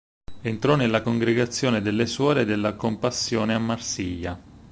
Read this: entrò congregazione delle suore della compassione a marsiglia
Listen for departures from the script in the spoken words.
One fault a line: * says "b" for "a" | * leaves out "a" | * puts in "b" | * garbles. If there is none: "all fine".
* puts in "nella"